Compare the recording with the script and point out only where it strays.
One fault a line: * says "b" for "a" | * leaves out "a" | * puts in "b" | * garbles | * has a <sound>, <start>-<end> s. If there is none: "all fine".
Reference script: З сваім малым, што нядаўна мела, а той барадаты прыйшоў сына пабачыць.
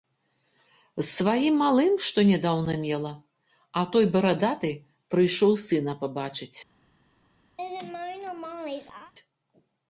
* has a laugh, 7.6-9.1 s